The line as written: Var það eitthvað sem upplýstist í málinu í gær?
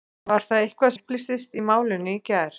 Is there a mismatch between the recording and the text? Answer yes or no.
yes